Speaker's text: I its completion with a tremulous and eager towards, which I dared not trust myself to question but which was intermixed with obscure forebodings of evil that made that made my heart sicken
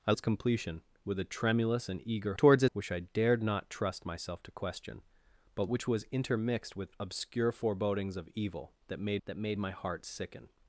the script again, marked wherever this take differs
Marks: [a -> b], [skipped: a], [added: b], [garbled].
I its completion with a tremulous and eager towards, which I dared not trust myself to question but which was intermixed with obscure forebodings of evil that made that made my heart sicken